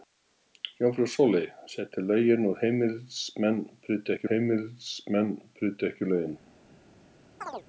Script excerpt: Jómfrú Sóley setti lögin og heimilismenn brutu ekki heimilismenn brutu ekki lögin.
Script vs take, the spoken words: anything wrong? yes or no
no